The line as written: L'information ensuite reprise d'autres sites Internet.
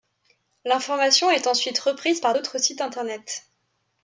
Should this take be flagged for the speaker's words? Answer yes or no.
yes